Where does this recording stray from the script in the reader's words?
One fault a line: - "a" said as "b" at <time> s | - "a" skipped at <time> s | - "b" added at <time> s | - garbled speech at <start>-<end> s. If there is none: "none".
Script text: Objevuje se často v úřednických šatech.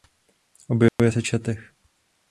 - "často v úřednických" skipped at 1.2 s